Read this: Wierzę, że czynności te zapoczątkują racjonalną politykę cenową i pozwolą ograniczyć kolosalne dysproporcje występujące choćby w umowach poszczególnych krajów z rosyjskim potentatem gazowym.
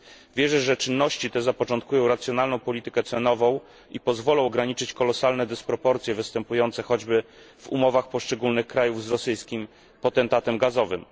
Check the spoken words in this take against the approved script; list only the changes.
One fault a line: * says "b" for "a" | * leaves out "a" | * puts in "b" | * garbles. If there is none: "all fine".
all fine